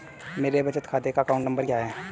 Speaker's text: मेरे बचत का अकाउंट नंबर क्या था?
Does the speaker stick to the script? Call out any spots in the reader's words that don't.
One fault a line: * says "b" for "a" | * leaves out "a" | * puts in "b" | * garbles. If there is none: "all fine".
* puts in "खाते"
* says "है" for "था"